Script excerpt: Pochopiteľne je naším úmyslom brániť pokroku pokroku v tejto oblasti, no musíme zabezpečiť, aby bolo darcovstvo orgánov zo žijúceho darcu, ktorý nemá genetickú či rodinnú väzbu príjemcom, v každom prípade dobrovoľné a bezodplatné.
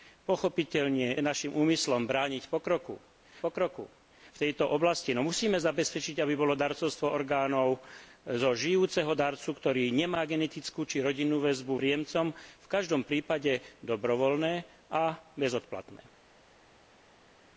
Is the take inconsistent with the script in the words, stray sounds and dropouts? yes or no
no